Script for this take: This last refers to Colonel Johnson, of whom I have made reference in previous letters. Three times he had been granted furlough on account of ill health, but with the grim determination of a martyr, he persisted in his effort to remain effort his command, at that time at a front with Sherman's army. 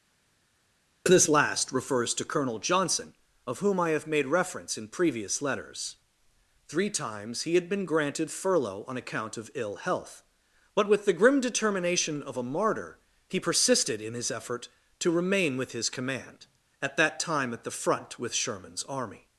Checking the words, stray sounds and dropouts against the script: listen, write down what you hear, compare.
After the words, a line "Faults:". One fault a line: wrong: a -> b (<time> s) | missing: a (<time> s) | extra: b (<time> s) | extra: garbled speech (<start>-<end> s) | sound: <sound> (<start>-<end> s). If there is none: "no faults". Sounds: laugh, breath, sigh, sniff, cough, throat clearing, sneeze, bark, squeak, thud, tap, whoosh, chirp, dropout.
This last refers to Colonel Johnson, of whom I have made reference in previous letters. Three times he had been granted furlough on account of ill health, but with the grim determination of a martyr, he persisted in his effort to remain with his command, at that time at the front with Sherman's army.
Faults:
wrong: effort -> with (15.6 s)
wrong: a -> the (17.6 s)